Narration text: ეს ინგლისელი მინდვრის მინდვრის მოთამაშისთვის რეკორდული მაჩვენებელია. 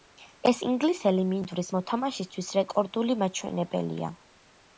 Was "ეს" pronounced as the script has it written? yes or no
yes